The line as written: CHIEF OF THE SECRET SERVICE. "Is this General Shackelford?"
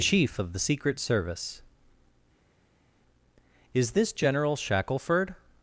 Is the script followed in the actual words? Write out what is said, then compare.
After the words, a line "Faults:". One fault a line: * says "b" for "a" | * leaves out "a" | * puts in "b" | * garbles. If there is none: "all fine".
CHIEF OF THE SECRET SERVICE. "Is this General Shackelford?"
Faults:
all fine